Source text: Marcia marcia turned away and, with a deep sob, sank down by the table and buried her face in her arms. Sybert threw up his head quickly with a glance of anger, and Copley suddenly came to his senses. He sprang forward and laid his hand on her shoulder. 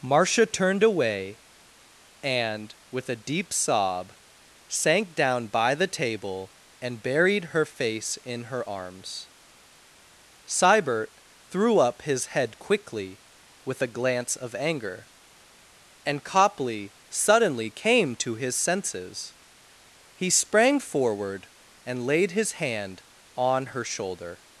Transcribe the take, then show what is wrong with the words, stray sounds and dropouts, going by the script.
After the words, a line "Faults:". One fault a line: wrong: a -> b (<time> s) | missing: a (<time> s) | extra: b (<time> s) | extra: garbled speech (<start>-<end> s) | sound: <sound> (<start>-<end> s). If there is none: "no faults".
Marcia turned away and, with a deep sob, sank down by the table and buried her face in her arms. Sybert threw up his head quickly with a glance of anger, and Copley suddenly came to his senses. He sprang forward and laid his hand on her shoulder.
Faults:
missing: marcia (0.5 s)